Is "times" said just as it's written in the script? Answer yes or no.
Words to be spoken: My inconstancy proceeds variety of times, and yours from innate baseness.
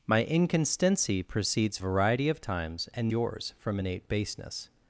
yes